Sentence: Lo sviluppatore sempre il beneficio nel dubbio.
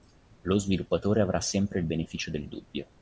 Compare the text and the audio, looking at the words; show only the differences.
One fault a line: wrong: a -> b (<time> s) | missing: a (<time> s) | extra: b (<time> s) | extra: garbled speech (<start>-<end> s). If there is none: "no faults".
extra: avrà (1.2 s)
wrong: nel -> del (2.3 s)